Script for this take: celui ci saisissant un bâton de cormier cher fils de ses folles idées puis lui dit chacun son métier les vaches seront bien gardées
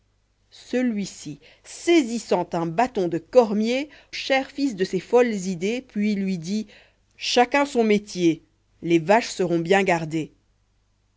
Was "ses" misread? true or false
false